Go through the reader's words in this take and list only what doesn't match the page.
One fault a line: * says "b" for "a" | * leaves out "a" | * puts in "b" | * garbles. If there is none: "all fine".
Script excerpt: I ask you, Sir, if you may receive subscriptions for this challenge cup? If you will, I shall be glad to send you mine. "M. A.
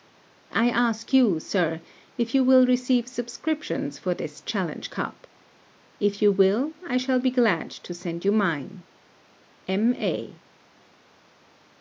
* says "will" for "may"